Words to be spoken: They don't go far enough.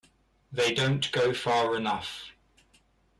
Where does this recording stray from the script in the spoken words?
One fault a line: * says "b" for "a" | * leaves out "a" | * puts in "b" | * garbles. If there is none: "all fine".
all fine